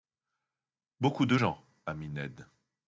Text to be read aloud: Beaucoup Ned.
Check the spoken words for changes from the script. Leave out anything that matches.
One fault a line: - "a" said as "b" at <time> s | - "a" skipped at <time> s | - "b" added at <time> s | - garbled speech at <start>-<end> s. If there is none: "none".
- "de gens ami" added at 1.3 s